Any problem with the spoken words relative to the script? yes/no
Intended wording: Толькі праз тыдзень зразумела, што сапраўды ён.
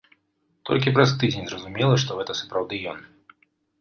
yes